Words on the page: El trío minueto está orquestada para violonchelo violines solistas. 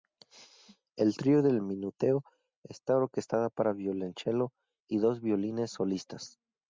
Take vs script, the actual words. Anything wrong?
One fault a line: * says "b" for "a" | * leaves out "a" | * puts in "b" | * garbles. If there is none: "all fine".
* puts in "del"
* puts in "y dos"